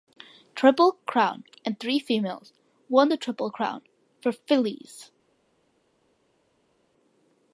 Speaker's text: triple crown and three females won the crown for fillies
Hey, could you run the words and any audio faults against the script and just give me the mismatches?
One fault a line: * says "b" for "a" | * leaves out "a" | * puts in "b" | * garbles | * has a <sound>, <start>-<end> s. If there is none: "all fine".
* puts in "triple"